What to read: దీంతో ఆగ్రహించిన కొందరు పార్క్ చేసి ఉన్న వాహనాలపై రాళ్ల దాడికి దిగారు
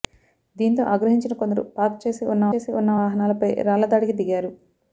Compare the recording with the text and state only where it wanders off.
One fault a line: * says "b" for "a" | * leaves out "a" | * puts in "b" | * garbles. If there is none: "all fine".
* puts in "చేసి ఉన్న"